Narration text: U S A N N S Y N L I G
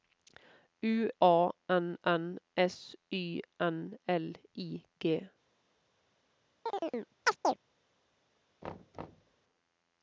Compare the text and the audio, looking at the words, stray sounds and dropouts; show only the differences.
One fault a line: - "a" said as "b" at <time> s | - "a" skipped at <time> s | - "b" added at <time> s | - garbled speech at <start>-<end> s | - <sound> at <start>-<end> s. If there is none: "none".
- "S" skipped at 1.1 s
- chirp at 6.7-7.6 s
- thud at 8.6-9.4 s